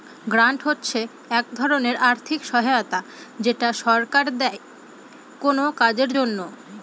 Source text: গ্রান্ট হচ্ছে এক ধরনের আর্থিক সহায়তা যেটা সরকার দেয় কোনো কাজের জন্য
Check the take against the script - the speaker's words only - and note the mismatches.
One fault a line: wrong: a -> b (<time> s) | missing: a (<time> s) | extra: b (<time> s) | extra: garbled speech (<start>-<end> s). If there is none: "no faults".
no faults